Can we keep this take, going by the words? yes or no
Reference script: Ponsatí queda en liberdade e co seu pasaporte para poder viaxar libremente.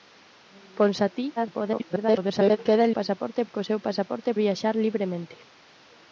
no